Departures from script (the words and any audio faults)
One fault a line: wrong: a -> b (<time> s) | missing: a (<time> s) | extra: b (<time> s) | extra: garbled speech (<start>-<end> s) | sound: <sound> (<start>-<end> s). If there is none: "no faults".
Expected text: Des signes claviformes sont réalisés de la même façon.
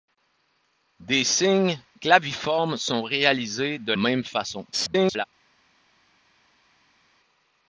missing: la (3.9 s)
extra: garbled speech (4.7-5.3 s)